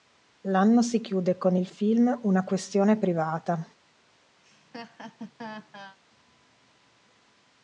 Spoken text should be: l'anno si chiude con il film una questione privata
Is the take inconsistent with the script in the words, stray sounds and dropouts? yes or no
yes